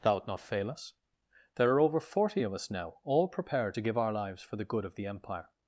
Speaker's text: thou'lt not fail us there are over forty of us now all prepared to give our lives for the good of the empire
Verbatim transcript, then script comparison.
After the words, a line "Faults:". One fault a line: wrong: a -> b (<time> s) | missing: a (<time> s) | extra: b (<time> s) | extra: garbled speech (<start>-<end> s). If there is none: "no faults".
thou'lt not fail us there are over forty of us now all prepared to give our lives for the good of the empire
Faults:
no faults